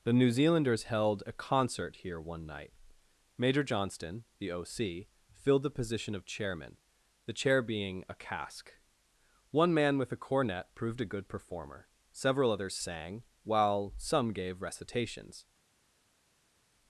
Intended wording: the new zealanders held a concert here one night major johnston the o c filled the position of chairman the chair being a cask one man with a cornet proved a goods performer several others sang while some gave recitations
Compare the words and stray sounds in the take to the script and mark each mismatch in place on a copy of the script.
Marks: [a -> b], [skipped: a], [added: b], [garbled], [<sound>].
the new zealanders held a concert here one night major johnston the o c filled the position of chairman the chair being a cask one man with a cornet proved a [goods -> good] performer several others sang while some gave recitations